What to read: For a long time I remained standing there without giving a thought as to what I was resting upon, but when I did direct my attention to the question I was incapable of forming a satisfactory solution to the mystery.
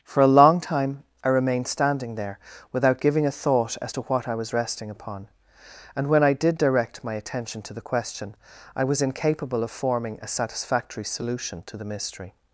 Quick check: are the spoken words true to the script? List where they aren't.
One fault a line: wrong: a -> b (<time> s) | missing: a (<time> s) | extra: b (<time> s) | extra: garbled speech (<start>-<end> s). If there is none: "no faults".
wrong: but -> and (5.9 s)